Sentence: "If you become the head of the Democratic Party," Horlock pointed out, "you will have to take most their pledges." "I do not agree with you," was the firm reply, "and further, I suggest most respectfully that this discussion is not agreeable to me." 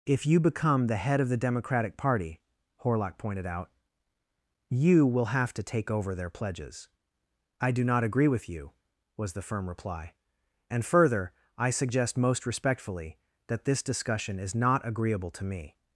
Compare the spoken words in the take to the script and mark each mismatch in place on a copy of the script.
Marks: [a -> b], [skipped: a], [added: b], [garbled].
"If you become the head of the Democratic Party," Horlock pointed out, "you will have to take [most -> over] their pledges." "I do not agree with you," was the firm reply, "and further, I suggest most respectfully that this discussion is not agreeable to me."